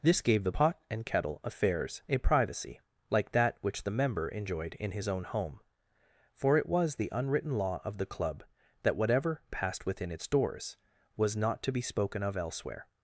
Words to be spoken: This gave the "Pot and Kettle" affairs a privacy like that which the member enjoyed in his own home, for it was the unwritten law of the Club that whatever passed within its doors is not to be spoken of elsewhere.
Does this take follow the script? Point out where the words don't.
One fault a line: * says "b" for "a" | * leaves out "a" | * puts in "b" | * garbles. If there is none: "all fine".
* says "was" for "is"